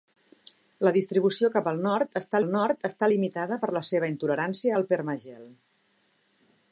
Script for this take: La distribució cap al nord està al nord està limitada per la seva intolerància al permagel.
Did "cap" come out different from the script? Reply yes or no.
no